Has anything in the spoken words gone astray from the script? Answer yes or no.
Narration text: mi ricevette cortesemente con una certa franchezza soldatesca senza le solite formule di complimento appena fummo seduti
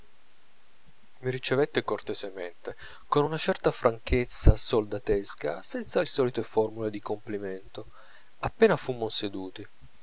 no